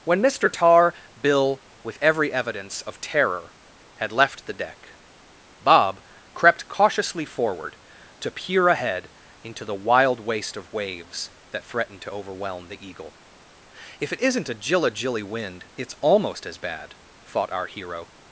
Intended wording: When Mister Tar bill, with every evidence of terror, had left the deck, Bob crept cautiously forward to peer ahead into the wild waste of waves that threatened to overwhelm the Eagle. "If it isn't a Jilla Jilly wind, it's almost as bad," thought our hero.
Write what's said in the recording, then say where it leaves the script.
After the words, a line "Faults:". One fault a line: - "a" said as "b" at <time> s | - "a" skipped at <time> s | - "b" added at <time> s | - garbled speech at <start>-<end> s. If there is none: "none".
When Mister Tar bill, with every evidence of terror, had left the deck, Bob crept cautiously forward to peer ahead into the wild waste of waves that threatened to overwhelm the Eagle. "If it isn't a Jilla Jilly wind, it's almost as bad," thought our hero.
Faults:
none